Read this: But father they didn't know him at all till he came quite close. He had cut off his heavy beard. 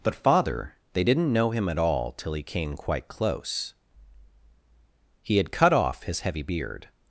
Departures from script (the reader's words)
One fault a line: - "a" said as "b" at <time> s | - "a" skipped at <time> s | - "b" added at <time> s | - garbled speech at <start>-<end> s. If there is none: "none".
none